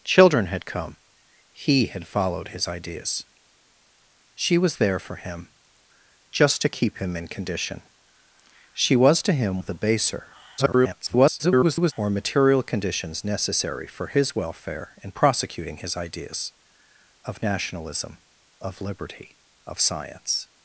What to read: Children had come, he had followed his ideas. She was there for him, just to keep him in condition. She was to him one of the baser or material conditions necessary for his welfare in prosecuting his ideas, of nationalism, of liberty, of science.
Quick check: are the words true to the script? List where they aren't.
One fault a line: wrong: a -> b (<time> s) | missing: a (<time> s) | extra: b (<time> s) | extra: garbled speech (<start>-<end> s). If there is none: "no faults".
missing: one (9.6 s)
extra: garbled speech (10.6-11.9 s)